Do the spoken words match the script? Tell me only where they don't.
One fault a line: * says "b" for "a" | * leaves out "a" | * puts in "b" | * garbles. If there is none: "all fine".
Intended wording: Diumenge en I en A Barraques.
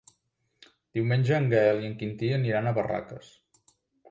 * puts in "Gaël"
* puts in "Quintí aniran"